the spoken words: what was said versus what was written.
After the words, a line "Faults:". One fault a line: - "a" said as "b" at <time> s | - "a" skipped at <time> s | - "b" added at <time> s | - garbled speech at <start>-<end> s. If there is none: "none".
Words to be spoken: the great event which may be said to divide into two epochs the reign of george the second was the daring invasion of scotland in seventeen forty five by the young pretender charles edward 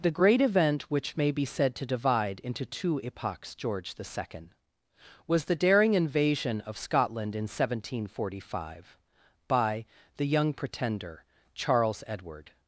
the great event which may be said to divide into two epochs george the second was the daring invasion of scotland in seventeen forty five by the young pretender charles edward
Faults:
- "the reign of" skipped at 3.5 s